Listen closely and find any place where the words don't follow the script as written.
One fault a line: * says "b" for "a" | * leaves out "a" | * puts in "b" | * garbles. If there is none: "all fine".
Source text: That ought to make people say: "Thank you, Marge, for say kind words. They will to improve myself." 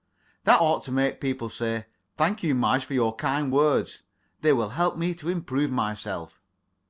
* says "your" for "say"
* puts in "help me"